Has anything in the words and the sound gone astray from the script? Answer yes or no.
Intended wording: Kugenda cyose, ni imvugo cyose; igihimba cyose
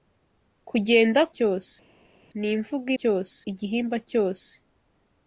no